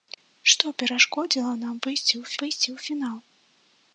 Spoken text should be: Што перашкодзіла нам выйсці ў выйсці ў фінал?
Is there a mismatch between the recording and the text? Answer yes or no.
no